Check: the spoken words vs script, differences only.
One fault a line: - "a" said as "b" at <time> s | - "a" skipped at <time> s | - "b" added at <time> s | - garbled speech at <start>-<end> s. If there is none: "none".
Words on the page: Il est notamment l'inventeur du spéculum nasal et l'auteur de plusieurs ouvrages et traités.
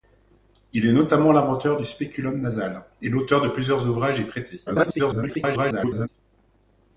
- garbled speech at 4.7-6.1 s